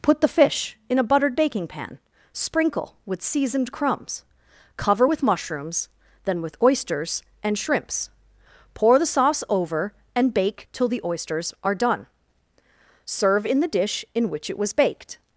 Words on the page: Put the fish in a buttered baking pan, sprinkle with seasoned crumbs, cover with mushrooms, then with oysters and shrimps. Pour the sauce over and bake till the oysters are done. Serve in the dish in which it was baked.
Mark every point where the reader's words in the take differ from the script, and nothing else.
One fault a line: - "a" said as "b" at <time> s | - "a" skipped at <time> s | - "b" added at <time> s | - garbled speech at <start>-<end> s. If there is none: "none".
none